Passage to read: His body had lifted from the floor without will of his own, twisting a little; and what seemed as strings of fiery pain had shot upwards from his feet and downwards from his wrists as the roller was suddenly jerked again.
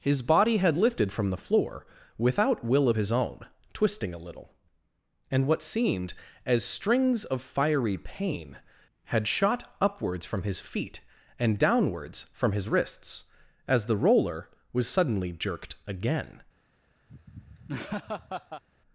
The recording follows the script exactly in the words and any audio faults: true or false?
false